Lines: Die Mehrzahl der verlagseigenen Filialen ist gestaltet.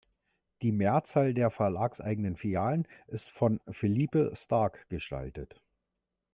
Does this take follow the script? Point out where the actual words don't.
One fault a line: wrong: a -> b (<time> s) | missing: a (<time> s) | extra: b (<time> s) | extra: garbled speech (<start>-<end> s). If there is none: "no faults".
extra: von Philippe Starck (3.3 s)